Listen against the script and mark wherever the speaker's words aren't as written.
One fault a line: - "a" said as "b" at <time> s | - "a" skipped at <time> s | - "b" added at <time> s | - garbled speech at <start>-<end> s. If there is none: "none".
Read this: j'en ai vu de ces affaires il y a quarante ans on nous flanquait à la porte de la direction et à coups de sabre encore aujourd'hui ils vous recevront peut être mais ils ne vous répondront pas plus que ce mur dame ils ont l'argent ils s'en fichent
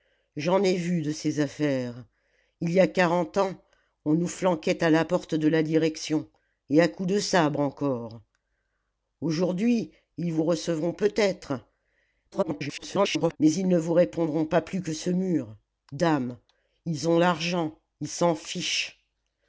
- garbled speech at 12.3-13.4 s